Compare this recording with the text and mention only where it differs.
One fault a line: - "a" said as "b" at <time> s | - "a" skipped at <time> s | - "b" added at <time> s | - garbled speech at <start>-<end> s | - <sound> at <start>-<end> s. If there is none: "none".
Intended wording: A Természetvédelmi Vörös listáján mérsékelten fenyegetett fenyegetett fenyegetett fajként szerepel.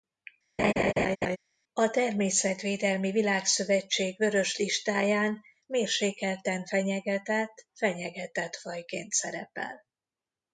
- laugh at 0.6-1.4 s
- "Világszövetség" added at 3.1 s
- "fenyegetett" skipped at 8.5 s